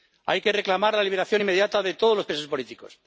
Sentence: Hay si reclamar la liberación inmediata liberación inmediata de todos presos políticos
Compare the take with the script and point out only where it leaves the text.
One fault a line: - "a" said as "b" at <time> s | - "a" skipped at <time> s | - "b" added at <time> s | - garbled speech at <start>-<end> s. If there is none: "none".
- "si" said as "que" at 0.4 s
- "liberación inmediata" skipped at 1.8 s
- "los" added at 2.2 s